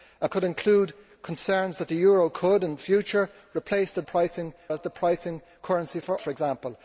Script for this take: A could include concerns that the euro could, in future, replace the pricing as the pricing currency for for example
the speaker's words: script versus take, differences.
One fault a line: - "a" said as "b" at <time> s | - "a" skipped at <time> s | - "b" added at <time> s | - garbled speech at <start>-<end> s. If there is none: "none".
none